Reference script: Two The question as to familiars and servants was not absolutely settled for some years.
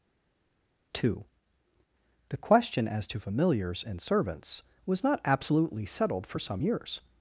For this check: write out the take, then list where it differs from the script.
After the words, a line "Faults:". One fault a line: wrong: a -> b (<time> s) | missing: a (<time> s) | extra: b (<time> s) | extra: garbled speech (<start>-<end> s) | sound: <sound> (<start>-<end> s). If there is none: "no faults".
Two The question as to familiars and servants was not absolutely settled for some years.
Faults:
no faults